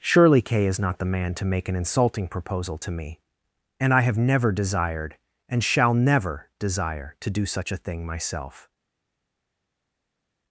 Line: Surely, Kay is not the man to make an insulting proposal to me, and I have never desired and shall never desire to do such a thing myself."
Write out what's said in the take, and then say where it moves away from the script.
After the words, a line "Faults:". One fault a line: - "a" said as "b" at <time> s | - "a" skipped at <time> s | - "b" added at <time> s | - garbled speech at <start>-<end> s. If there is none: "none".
Surely, Kay is not the man to make an insulting proposal to me, and I have never desired and shall never desire to do such a thing myself."
Faults:
none